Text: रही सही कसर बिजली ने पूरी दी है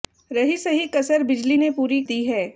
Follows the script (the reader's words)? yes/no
yes